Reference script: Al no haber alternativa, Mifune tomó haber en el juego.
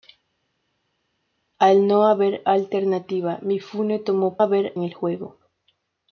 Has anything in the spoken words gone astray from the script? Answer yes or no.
no